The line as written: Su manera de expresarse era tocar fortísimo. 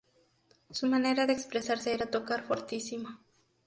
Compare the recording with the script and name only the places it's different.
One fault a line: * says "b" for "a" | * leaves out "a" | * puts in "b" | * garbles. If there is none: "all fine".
all fine